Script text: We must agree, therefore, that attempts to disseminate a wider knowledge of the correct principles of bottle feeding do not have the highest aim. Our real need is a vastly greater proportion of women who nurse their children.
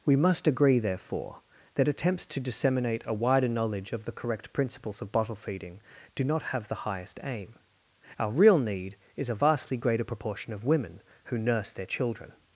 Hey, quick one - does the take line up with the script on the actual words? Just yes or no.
yes